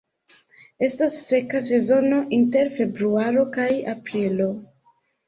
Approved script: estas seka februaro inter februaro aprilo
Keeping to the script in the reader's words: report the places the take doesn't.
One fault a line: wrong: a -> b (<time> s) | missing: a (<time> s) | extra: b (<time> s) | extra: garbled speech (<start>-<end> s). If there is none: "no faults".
wrong: februaro -> sezono (1.7 s)
extra: kaj (3.6 s)